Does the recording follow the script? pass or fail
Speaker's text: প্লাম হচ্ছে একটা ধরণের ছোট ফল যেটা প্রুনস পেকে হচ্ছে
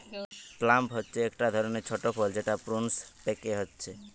pass